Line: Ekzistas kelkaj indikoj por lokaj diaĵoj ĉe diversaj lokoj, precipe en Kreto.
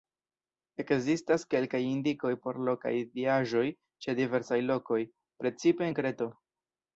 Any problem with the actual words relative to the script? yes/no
no